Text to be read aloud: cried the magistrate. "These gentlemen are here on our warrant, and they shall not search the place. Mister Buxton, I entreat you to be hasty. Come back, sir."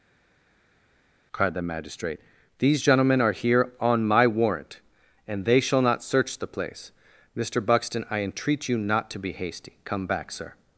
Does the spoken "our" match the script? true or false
false